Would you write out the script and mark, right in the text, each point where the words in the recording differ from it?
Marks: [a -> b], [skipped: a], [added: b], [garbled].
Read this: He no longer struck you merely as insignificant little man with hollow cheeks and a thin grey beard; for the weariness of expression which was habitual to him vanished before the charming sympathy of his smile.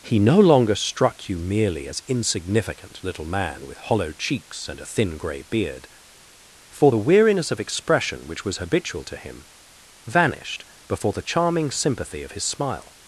He no longer struck you merely as insignificant little man with hollow cheeks and a thin grey beard; for the weariness of expression which was habitual to him vanished before the charming sympathy of his smile.